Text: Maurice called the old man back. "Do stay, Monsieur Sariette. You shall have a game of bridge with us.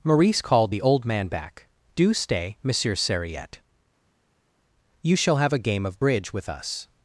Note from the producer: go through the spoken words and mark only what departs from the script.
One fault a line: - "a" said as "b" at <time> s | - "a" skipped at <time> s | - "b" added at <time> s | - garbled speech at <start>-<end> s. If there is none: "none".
none